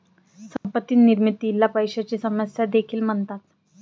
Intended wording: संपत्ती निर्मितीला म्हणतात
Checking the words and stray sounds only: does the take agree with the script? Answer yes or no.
no